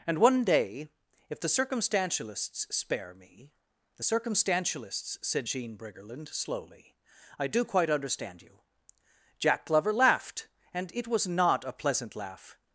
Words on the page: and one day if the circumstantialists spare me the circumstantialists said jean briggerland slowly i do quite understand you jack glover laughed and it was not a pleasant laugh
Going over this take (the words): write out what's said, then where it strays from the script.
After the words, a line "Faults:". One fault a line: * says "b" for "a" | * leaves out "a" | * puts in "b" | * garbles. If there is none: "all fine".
and one day if the circumstantialists spare me the circumstantialists said jean briggerland slowly i do quite understand you jack glover laughed and it was not a pleasant laugh
Faults:
all fine